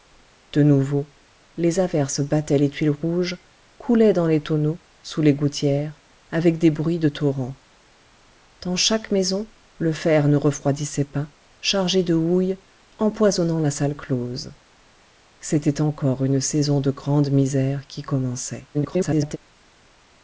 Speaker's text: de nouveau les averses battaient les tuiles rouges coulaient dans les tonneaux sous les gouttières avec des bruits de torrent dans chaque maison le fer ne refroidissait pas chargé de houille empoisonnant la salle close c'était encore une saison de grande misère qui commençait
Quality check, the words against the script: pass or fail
fail